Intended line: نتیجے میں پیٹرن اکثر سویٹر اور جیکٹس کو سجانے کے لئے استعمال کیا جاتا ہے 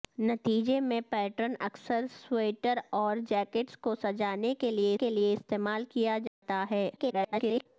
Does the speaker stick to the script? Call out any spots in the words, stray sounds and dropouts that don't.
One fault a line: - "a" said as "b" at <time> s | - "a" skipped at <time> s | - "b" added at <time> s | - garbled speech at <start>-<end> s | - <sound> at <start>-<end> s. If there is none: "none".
- "کے لئے" added at 4.9 s
- dropout at 6.3-6.4 s
- garbled speech at 7.0-7.7 s